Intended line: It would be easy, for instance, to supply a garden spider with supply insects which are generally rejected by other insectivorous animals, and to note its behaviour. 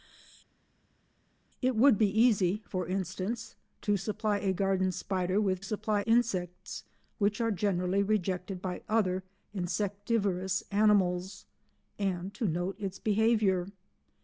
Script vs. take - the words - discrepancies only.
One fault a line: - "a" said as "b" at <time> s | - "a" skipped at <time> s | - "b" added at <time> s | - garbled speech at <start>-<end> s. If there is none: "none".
none